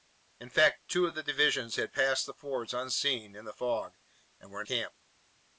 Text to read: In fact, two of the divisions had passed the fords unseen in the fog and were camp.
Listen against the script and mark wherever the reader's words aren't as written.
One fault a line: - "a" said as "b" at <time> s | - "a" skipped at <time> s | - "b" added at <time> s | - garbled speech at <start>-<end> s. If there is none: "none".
none